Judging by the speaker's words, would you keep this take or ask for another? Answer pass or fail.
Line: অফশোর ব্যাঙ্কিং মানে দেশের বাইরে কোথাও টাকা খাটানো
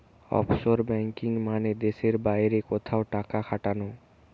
pass